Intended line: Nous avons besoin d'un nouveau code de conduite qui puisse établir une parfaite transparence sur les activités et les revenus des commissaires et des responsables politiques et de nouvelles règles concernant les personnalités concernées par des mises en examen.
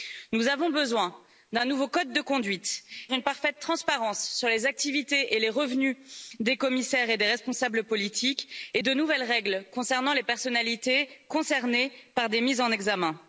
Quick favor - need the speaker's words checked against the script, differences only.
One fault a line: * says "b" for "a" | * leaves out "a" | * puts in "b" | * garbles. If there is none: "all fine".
* leaves out "qui puisse établir"